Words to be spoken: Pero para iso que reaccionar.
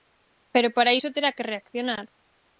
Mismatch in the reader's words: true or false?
true